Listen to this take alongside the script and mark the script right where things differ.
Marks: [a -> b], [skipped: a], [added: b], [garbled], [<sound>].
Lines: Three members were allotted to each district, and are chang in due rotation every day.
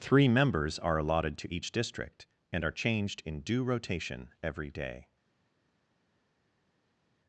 Three members [were -> are] allotted to each district, and are [chang -> changed] in due rotation every day.